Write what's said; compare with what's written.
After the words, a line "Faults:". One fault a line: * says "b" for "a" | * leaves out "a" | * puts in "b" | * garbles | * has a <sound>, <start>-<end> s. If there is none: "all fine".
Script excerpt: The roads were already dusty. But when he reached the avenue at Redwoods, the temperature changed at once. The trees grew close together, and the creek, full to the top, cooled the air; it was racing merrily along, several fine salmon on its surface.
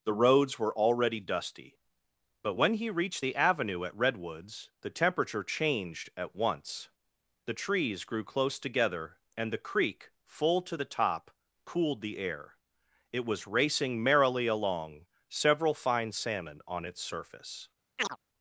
The roads were already dusty. But when he reached the avenue at Redwoods, the temperature changed at once. The trees grew close together, and the creek, full to the top, cooled the air; it was racing merrily along, several fine salmon on its surface.
Faults:
* has a chirp, 18.0-18.2 s